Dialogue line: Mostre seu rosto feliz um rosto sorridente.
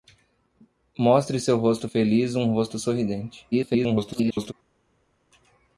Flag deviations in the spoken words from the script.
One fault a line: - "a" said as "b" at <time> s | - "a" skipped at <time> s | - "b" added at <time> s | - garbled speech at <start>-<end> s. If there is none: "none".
- garbled speech at 3.5-4.5 s